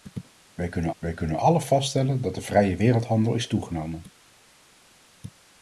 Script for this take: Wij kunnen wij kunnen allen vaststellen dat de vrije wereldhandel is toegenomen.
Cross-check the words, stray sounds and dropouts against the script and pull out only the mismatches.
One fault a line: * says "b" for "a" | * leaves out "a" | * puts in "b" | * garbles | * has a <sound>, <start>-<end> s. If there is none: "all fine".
all fine